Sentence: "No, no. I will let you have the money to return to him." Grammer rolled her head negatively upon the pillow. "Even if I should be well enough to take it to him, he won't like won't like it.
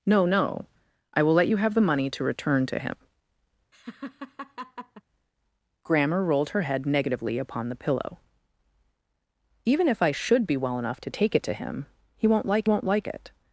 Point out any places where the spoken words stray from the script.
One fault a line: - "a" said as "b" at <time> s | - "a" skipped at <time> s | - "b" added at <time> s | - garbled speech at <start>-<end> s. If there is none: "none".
none